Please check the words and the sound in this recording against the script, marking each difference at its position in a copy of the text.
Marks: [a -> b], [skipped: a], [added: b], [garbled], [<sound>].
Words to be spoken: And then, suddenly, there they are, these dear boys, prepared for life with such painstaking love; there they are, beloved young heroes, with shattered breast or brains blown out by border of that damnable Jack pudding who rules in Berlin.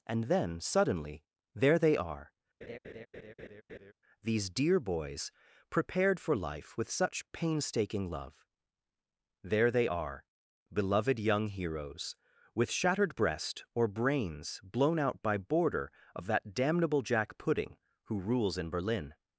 And then, suddenly, there they are, [laugh] these dear boys, prepared for life with such painstaking love; there they are, beloved young heroes, with shattered breast or brains blown out by border of that damnable Jack pudding who rules in Berlin.